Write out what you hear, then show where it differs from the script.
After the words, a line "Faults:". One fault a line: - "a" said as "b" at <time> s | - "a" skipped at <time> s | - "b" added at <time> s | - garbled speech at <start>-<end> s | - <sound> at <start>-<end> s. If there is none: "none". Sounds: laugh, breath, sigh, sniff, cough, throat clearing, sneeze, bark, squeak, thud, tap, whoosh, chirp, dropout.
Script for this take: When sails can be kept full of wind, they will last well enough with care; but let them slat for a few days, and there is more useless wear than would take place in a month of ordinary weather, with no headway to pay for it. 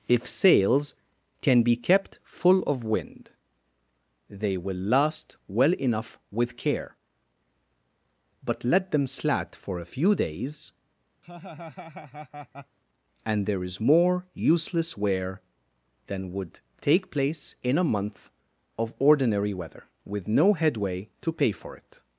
If sails can be kept full of wind, they will last well enough with care; but let them slat for a few days, and there is more useless wear than would take place in a month of ordinary weather, with no headway to pay for it.
Faults:
- "When" said as "If" at 0.1 s
- laugh at 11.2-12.8 s